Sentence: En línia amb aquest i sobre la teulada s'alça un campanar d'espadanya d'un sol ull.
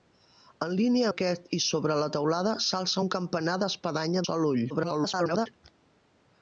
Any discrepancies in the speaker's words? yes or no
yes